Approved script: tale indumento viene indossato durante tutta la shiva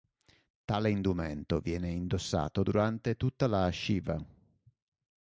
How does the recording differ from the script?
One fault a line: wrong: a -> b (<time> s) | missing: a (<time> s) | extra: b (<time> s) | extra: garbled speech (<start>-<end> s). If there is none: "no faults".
no faults